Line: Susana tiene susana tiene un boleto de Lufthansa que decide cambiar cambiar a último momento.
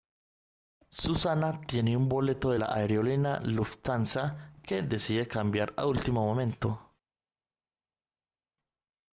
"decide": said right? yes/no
yes